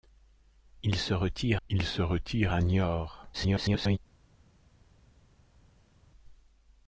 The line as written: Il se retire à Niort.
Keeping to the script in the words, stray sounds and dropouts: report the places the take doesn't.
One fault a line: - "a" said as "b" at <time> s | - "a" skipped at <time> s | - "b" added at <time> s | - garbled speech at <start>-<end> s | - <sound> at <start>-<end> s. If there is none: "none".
- "il se retire" added at 1.7 s
- garbled speech at 3.3-4.0 s